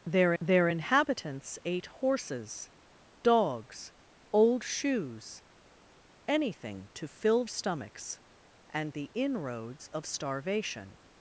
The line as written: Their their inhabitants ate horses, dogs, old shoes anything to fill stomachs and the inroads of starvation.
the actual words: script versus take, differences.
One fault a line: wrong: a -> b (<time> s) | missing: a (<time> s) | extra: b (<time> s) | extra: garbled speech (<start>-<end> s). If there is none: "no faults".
no faults